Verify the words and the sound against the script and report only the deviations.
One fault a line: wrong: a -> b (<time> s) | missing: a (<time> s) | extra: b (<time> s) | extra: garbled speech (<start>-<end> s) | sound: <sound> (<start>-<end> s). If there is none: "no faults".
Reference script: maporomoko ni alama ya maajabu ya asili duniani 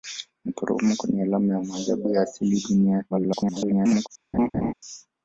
extra: garbled speech (3.1-4.1 s)
sound: laugh (4.3-4.7 s)